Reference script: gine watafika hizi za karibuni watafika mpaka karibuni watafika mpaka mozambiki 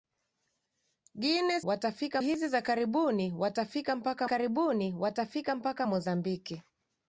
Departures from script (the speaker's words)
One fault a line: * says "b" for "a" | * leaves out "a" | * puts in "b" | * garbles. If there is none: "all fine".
all fine